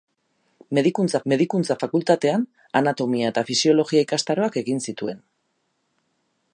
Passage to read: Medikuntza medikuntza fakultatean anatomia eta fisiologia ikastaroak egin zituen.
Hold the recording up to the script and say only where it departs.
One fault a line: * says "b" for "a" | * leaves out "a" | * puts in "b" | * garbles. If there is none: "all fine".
all fine